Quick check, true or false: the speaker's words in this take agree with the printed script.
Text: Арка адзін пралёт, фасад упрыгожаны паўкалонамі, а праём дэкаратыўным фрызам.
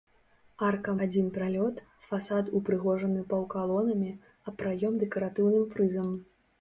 true